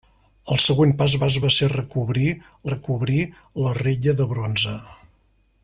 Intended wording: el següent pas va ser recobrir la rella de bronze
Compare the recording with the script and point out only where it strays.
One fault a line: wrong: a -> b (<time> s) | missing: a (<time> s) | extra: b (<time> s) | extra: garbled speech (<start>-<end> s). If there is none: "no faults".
extra: pas (1.2 s)
extra: recobrir (2.7 s)